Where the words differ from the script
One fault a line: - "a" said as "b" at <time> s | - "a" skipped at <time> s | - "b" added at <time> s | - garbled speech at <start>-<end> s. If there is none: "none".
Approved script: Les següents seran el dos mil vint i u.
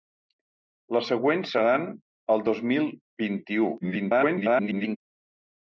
- garbled speech at 3.8-5.0 s